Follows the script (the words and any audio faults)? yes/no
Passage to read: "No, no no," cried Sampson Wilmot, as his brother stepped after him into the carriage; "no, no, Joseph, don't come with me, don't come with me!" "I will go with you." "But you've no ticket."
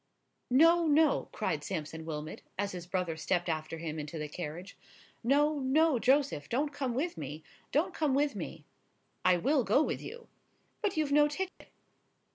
no